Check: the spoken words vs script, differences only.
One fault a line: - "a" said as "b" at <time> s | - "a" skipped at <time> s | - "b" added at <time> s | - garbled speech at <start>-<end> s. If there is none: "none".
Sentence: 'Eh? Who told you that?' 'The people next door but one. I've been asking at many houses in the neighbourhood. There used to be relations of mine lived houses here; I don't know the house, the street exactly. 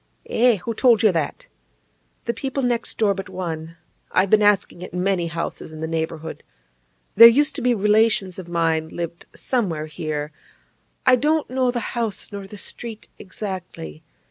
- "houses" said as "somewhere" at 9.3 s
- "nor" added at 12.3 s